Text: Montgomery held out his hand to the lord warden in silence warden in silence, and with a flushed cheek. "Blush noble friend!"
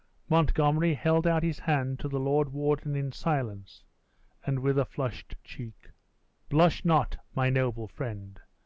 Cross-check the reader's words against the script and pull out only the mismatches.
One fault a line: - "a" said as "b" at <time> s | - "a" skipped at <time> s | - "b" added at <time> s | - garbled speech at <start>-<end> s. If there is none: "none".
- "warden in silence" skipped at 3.8 s
- "not my" added at 6.9 s